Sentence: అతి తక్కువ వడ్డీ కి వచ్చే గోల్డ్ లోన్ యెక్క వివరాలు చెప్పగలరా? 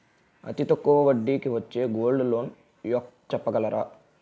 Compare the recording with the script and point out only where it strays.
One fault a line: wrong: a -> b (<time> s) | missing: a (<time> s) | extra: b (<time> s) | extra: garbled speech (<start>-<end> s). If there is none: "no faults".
missing: వివరాలు (3.3 s)